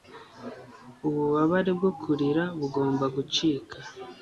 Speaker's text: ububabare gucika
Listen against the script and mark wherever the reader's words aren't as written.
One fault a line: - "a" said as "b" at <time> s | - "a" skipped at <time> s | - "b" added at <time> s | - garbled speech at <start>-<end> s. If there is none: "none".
- "bwo kurira bugomba" added at 1.8 s